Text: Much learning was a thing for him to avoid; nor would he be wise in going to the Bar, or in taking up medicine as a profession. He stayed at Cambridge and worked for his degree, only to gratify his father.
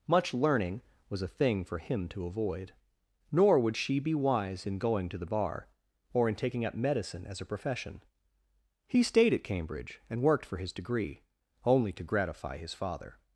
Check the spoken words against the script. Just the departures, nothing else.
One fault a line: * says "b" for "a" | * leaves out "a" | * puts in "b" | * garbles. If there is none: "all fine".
* says "she" for "he"